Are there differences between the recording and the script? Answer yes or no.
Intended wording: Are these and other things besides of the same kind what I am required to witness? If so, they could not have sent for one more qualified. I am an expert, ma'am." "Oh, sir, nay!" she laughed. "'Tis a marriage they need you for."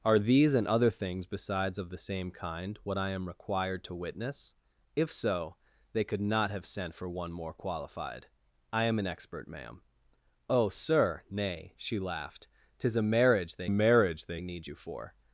yes